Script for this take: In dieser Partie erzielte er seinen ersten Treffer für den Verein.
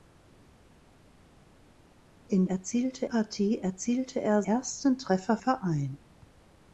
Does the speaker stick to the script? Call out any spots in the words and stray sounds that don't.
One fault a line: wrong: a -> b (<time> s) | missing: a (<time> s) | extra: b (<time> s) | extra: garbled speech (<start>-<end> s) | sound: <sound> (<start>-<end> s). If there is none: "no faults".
wrong: dieser -> erzielte (2.5 s)
missing: seinen (4.4 s)
missing: für den (5.4 s)